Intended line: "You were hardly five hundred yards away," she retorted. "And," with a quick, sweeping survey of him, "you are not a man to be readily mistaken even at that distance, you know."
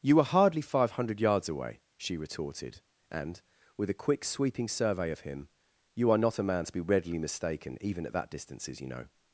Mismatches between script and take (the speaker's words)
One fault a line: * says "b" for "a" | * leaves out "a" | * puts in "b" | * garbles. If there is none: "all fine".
* says "distances" for "distance"